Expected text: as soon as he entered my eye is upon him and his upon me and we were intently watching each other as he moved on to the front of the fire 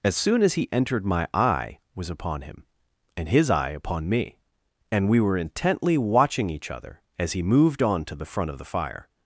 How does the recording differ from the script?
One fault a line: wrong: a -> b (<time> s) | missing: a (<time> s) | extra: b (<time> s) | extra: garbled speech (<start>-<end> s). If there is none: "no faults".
wrong: is -> was (1.9 s)
extra: eye (3.5 s)